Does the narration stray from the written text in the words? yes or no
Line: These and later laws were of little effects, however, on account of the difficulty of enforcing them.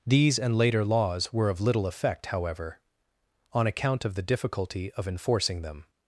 yes